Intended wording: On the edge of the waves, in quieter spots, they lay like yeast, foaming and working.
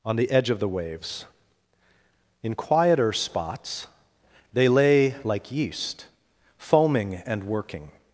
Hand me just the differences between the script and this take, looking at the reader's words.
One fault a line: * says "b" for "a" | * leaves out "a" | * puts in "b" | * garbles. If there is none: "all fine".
all fine